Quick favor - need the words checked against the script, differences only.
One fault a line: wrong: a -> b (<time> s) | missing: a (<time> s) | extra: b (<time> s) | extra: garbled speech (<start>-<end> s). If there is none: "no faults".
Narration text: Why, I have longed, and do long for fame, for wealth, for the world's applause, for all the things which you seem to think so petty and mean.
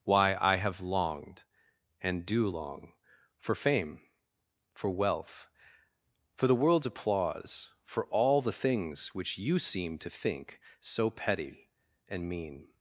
no faults